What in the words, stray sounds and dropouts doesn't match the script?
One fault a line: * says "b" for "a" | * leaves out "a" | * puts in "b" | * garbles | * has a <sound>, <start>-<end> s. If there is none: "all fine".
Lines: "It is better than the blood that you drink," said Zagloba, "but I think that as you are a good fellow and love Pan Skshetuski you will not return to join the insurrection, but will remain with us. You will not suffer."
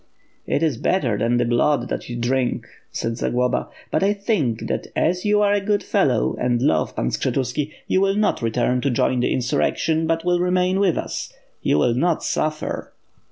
all fine